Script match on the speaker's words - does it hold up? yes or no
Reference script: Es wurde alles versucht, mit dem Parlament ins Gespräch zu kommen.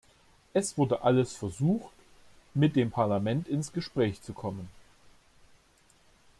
yes